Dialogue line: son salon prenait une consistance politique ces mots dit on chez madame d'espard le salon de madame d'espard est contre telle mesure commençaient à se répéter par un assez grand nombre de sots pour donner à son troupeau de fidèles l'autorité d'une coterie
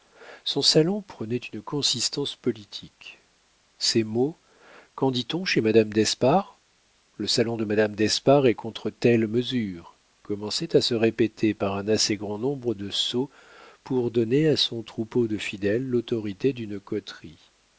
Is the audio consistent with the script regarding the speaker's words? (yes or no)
no